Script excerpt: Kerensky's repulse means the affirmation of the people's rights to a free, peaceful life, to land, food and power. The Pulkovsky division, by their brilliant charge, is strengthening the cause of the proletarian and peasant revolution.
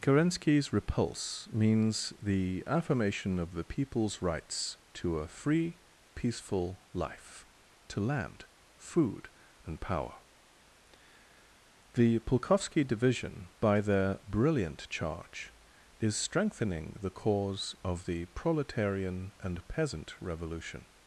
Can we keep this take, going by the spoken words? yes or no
yes